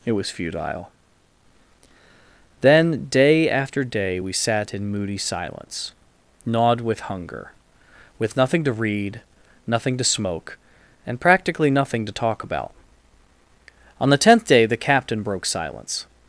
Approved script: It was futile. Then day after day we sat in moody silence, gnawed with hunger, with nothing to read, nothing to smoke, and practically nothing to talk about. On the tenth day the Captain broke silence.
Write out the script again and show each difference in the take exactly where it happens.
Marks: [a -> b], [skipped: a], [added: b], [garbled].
It was futile. Then day after day we sat in moody silence, gnawed with hunger, with nothing to read, nothing to smoke, and practically nothing to talk about. On the tenth day the Captain broke silence.